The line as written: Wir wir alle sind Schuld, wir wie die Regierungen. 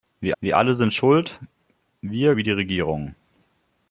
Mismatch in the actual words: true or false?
false